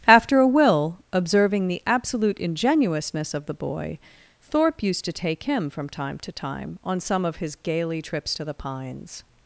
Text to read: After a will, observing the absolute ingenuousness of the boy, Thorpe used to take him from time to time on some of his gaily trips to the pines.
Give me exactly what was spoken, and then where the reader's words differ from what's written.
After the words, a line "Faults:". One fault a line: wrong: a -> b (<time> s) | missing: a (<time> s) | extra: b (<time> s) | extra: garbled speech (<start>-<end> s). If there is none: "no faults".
After a will, observing the absolute ingenuousness of the boy, Thorpe used to take him from time to time on some of his gaily trips to the pines.
Faults:
no faults